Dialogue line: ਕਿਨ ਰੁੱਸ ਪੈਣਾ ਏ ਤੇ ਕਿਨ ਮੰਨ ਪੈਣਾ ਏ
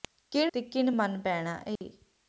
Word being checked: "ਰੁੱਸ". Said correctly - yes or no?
no